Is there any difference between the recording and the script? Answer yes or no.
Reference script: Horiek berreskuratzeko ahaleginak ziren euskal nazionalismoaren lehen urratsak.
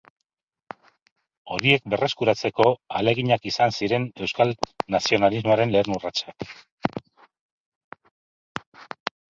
yes